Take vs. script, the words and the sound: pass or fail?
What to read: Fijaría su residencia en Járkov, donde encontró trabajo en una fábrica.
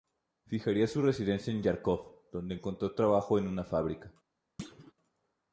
fail